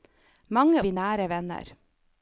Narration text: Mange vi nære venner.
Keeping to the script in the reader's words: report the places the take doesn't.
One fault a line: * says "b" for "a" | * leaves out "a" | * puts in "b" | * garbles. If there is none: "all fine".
all fine